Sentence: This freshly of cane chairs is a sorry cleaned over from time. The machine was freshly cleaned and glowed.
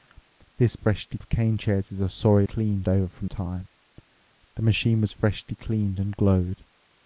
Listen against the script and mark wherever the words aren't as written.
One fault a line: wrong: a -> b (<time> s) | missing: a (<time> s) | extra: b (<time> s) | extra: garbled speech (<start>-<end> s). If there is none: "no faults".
no faults